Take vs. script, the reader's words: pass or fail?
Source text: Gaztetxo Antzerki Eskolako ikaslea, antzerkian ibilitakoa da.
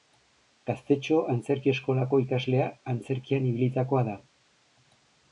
pass